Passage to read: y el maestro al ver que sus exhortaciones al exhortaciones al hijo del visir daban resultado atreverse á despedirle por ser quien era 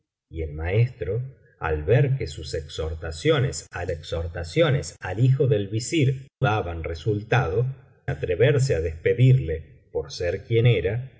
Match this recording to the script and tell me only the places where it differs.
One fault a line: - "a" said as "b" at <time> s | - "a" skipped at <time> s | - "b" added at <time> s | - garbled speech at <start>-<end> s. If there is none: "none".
none